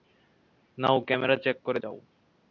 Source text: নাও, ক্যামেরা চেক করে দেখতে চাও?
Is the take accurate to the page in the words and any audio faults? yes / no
no